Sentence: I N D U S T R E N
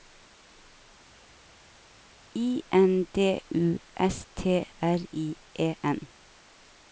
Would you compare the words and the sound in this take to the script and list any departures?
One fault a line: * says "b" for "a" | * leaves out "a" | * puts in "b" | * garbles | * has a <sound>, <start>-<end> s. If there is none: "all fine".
* puts in "I"